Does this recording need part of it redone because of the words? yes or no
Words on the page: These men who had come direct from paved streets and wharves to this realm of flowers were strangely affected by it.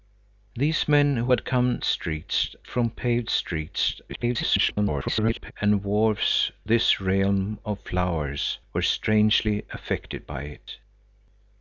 yes